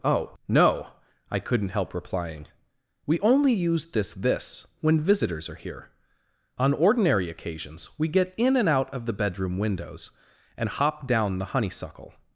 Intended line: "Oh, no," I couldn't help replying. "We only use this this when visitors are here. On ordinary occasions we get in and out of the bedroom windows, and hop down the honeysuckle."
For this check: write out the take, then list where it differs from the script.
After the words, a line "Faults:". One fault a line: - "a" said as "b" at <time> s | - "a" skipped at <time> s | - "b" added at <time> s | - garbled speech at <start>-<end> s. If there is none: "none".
"Oh, no," I couldn't help replying. "We only use this this when visitors are here. On ordinary occasions we get in and out of the bedroom windows, and hop down the honeysuckle."
Faults:
none